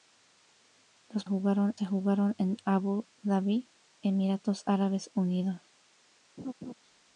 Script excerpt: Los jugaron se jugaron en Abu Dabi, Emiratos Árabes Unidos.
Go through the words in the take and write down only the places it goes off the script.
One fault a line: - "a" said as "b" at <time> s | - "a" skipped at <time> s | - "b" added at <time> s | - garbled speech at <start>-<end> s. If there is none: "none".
none